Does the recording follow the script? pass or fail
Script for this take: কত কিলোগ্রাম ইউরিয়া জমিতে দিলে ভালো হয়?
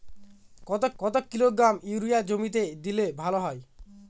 fail